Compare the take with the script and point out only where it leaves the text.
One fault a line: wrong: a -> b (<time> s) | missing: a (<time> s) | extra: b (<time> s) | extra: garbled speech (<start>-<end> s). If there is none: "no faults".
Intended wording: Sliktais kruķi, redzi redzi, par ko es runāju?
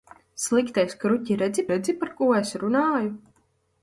no faults